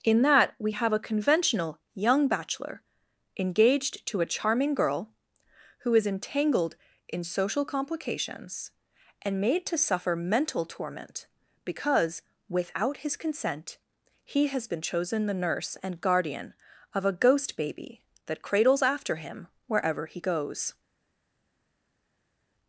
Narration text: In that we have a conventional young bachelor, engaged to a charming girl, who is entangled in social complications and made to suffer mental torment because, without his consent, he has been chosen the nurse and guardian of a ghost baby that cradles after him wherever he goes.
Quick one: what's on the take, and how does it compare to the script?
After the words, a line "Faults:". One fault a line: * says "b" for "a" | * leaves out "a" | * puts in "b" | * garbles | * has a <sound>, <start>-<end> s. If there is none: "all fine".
In that we have a conventional young bachelor, engaged to a charming girl, who is entangled in social complications and made to suffer mental torment because, without his consent, he has been chosen the nurse and guardian of a ghost baby that cradles after him wherever he goes.
Faults:
all fine